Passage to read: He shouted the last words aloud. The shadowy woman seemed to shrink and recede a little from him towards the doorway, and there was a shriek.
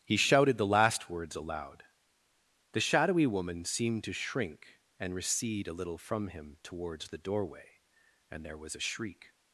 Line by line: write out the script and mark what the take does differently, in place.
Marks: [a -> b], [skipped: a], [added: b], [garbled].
He shouted the last words aloud. The shadowy woman seemed to shrink and recede a little from him towards the doorway, and there was a shriek.